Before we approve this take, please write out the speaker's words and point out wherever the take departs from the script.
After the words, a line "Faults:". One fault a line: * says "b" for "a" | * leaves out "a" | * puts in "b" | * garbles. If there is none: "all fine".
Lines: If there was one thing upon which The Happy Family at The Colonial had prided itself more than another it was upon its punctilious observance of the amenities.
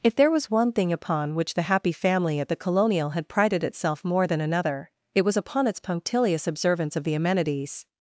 If there was one thing upon which The Happy Family at The Colonial had prided itself more than another it was upon its punctilious observance of the amenities.
Faults:
all fine